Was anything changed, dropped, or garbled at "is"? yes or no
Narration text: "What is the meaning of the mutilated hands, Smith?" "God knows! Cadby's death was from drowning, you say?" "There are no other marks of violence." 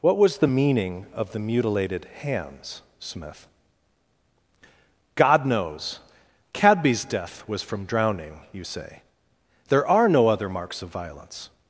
yes